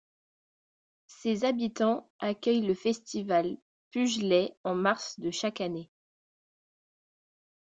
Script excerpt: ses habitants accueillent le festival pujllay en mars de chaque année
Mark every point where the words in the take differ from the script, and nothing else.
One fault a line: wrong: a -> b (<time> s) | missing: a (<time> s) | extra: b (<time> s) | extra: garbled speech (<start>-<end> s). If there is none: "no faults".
no faults